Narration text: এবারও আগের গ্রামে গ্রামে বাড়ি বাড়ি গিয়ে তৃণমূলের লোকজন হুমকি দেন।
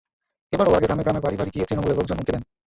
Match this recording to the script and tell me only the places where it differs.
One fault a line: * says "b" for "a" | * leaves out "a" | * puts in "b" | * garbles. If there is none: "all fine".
all fine